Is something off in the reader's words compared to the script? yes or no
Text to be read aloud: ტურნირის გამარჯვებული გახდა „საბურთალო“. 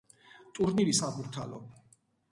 yes